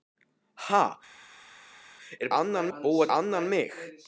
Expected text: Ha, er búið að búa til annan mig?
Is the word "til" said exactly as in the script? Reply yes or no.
no